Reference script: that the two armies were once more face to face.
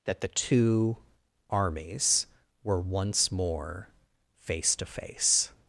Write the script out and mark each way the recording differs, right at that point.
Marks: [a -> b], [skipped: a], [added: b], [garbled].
that the two armies were once more face to face.